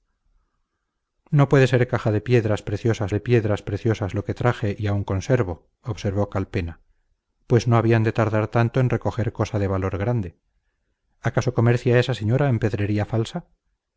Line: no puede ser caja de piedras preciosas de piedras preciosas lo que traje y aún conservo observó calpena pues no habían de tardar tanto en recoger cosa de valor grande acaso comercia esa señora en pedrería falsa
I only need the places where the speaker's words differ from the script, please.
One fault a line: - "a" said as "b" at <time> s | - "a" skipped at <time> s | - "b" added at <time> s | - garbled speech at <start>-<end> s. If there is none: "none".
none